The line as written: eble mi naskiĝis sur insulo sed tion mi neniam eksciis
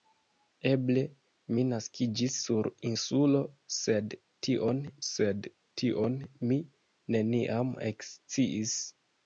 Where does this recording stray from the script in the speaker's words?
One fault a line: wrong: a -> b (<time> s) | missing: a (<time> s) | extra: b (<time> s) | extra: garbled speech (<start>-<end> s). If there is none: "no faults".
extra: sed tion (5.1 s)